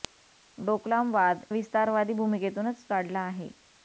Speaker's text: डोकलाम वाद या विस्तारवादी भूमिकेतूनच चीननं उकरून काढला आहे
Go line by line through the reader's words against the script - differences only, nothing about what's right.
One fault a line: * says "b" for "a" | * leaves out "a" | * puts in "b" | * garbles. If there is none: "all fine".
* leaves out "या"
* leaves out "चीननं उकरून"